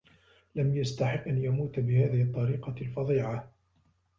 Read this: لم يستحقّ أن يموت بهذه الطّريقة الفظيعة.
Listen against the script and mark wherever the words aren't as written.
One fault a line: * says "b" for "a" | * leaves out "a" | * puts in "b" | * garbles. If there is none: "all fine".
all fine